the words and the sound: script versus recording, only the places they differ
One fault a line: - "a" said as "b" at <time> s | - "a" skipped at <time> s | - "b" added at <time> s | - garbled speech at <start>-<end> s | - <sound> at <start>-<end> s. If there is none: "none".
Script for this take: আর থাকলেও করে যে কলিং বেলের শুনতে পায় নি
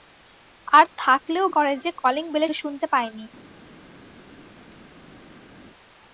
none